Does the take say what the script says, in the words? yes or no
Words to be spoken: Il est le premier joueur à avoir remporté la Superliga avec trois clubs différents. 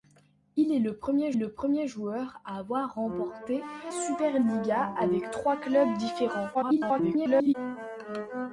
no